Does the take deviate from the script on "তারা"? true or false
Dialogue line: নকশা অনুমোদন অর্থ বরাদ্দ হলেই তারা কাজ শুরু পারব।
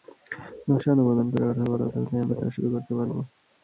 true